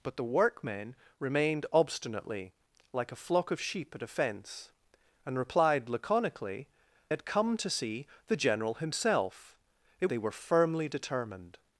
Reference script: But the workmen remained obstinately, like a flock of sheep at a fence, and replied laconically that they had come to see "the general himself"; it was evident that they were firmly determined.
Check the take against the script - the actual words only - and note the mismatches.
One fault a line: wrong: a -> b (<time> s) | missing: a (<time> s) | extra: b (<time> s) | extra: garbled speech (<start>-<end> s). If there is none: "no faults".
missing: that they (6.7 s)
missing: was evident that (10.1 s)